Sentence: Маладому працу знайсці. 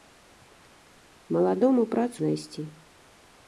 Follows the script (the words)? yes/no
yes